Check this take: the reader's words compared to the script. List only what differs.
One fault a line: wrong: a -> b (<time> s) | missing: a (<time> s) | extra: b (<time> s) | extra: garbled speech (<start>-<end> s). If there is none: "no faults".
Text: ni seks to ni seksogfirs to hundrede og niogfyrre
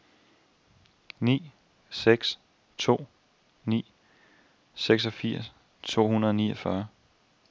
no faults